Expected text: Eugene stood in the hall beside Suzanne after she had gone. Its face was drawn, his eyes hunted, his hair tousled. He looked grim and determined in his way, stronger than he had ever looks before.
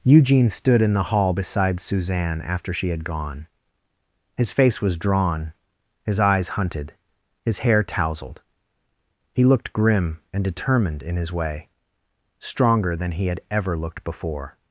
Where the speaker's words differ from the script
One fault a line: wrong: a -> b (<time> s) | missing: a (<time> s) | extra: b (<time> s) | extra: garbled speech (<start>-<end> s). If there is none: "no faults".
wrong: Its -> His (4.3 s)
wrong: looks -> looked (13.7 s)